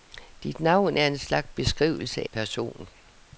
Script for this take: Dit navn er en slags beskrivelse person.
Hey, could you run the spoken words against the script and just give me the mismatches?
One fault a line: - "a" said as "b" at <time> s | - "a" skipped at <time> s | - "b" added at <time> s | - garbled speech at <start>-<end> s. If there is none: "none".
none